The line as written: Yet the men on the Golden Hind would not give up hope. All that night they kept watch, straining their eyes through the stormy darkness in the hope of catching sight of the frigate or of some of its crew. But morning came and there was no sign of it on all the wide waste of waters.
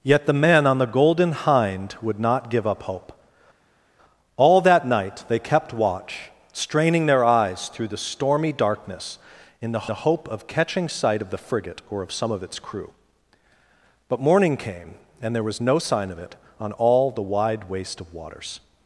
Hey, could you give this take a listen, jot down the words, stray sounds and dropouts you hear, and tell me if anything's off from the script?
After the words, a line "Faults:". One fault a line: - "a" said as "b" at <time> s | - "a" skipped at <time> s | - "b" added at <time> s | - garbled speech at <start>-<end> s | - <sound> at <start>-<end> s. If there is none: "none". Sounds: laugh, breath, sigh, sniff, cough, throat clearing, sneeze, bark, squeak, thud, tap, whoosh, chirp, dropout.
Yet the men on the Golden Hind would not give up hope. All that night they kept watch, straining their eyes through the stormy darkness in the the hope of catching sight of the frigate or of some of its crew. But morning came and there was no sign of it on all the wide waste of waters.
Faults:
- "the" added at 9.9 s